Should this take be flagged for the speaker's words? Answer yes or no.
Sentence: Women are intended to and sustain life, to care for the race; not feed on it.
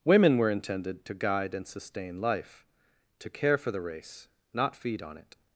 yes